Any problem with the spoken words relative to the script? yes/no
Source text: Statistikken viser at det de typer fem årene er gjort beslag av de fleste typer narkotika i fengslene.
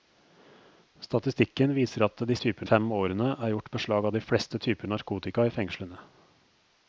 no